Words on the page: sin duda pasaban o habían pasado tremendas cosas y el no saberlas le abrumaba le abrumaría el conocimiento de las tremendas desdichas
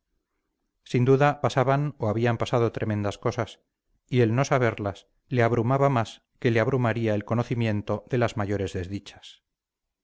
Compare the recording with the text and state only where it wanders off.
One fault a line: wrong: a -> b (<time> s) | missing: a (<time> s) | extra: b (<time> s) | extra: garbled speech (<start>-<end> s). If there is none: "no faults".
extra: más que (5.9 s)
wrong: tremendas -> mayores (8.4 s)